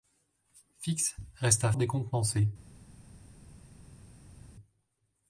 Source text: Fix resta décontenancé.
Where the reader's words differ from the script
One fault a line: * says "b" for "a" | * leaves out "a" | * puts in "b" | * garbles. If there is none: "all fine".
all fine